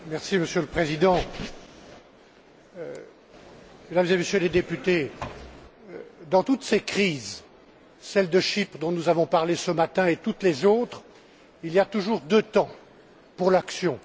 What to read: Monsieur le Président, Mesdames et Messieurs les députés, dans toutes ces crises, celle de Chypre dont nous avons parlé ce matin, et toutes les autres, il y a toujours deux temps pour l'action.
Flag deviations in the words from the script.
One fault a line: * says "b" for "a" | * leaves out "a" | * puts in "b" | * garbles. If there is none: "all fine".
all fine